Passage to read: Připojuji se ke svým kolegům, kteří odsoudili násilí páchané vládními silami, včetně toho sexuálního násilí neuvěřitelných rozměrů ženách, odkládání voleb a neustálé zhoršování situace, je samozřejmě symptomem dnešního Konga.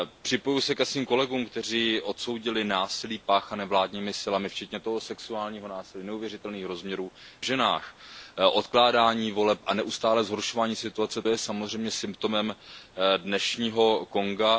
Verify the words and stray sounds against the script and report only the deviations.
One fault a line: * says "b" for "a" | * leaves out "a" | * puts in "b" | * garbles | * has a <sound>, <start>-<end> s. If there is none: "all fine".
all fine